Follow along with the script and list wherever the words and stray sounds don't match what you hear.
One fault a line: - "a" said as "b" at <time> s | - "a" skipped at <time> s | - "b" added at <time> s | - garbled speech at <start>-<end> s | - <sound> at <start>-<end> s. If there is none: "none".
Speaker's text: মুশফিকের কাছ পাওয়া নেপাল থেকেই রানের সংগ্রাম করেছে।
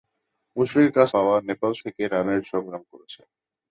none